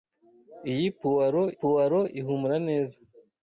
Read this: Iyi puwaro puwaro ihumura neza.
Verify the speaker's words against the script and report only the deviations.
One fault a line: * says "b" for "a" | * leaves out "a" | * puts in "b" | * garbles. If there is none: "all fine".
all fine